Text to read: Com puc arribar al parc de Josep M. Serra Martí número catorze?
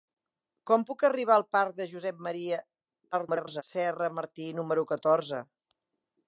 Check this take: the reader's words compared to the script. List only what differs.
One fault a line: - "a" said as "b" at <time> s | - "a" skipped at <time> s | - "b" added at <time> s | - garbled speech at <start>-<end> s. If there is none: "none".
- garbled speech at 3.1-3.6 s